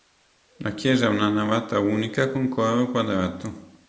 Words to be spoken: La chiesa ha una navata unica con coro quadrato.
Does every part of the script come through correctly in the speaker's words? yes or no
yes